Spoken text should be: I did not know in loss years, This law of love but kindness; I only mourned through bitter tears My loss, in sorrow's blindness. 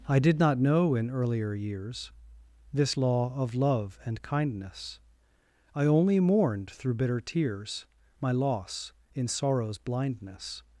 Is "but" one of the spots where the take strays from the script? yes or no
yes